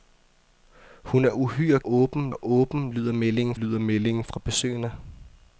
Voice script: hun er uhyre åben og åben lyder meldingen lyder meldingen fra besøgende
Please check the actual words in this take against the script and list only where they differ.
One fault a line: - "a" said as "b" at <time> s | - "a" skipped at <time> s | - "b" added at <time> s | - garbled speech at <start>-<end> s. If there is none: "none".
none